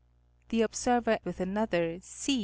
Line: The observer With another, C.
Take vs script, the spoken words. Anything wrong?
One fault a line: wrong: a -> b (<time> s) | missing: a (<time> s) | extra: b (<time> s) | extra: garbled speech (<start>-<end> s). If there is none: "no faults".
no faults